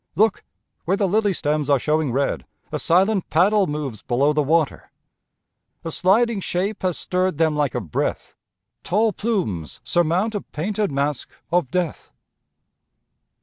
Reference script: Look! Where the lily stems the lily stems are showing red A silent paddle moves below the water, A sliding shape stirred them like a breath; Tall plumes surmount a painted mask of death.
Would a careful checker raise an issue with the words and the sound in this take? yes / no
yes